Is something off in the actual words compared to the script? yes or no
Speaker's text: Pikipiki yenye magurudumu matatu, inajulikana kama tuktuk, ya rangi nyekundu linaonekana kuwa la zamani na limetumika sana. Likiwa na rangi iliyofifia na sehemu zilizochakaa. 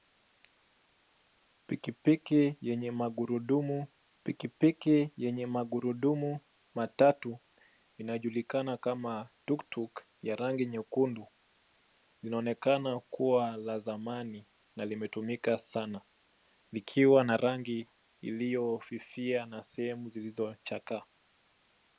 yes